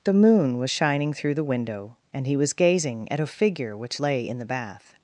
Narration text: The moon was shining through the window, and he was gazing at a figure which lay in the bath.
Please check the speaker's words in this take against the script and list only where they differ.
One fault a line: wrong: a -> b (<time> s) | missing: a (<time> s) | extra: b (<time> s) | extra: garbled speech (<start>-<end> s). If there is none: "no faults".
no faults